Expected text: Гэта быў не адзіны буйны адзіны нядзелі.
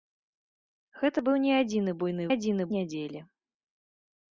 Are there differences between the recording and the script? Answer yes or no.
no